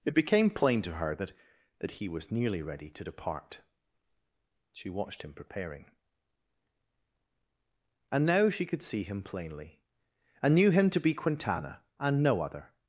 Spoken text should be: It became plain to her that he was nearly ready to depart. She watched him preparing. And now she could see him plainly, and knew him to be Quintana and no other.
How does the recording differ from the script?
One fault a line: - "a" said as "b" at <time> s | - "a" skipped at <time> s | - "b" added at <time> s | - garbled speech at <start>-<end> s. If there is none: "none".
- "that" added at 1.8 s